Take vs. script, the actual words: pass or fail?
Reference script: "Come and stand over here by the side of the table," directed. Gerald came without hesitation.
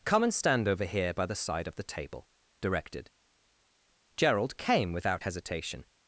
pass